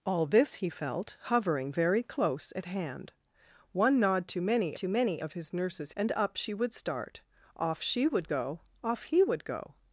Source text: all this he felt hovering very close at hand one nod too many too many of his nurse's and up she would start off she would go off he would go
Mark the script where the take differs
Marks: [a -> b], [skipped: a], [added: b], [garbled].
all this he felt hovering very close at hand one nod too many too many of his nurse's and up she would start off she would go off he would go